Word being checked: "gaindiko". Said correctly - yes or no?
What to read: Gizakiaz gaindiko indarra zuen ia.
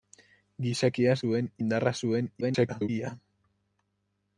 no